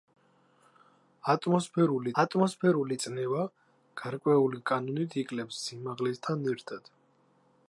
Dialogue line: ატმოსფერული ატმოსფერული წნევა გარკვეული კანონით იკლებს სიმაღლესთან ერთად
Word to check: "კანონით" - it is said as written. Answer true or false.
true